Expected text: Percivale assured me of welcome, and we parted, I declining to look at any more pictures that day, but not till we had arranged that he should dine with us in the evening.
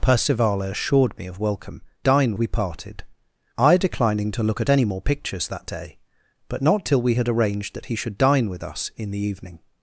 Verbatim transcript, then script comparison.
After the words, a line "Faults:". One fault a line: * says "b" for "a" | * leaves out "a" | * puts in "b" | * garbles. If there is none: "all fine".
Percivale assured me of welcome, dine we parted, I declining to look at any more pictures that day, but not till we had arranged that he should dine with us in the evening.
Faults:
* says "dine" for "and"